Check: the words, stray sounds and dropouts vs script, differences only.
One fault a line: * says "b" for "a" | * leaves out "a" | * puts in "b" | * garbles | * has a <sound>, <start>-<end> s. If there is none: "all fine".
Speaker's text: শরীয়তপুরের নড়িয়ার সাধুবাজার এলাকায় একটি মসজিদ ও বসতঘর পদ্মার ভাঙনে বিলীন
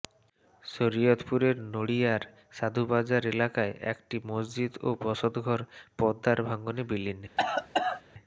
* has a cough, 7.4-8.0 s